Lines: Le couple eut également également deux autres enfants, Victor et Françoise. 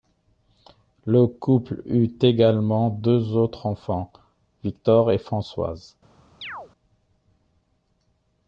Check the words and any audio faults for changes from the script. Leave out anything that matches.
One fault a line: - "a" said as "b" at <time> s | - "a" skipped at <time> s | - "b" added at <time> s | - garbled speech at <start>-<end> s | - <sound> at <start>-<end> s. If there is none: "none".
- "également" skipped at 2.9 s
- chirp at 6.4-6.7 s